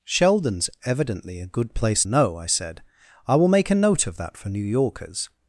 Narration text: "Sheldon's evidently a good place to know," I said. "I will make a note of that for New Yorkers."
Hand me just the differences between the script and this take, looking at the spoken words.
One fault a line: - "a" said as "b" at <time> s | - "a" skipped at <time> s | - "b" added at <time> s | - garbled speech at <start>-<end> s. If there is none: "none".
- "to" skipped at 2.0 s